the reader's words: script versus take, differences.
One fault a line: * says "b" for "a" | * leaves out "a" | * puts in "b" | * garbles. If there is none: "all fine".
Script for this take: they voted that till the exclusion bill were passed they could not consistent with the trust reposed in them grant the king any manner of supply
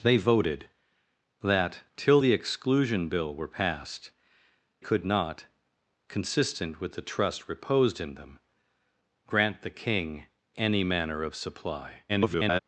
* leaves out "they"
* garbles